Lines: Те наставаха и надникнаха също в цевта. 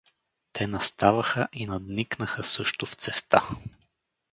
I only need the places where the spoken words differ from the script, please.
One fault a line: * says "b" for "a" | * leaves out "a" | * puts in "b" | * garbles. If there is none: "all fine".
all fine